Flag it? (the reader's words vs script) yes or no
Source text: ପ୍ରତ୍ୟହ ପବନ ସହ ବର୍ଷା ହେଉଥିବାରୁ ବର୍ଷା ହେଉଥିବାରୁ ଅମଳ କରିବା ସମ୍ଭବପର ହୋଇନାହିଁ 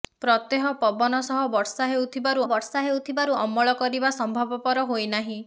no